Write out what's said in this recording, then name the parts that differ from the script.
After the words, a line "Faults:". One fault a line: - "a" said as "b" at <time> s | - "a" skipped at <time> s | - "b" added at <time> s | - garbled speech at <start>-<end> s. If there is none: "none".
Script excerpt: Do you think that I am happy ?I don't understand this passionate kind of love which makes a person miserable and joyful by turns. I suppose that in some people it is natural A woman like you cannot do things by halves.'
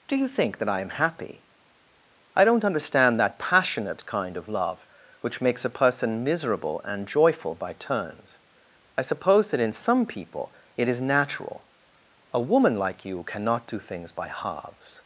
Do you think that I am happy ?I don't understand that passionate kind of love which makes a person miserable and joyful by turns. I suppose that in some people it is natural A woman like you cannot do things by halves.'
Faults:
- "this" said as "that" at 3.2 s